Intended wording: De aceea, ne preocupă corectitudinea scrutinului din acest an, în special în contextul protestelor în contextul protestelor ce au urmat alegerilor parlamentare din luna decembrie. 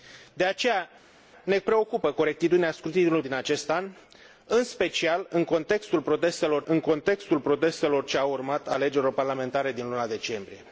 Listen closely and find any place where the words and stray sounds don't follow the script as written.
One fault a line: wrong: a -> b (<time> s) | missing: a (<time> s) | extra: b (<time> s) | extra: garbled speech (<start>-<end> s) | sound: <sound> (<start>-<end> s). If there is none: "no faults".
no faults